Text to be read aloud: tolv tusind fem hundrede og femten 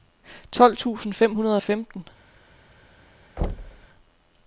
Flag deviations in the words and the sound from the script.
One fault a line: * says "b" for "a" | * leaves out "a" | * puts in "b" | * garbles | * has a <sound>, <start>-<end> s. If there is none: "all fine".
* has a thud, 3.4-3.9 s